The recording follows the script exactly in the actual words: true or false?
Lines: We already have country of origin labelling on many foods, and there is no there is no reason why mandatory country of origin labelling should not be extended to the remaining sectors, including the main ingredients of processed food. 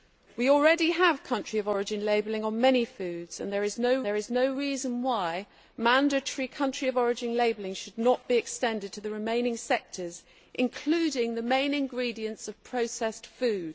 true